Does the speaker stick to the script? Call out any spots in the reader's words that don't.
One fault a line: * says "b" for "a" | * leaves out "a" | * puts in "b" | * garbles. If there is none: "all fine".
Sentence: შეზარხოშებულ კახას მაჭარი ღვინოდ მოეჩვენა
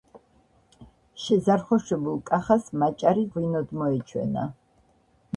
all fine